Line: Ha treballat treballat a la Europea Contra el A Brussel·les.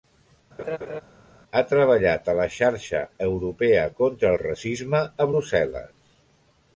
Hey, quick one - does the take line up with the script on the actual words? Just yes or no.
no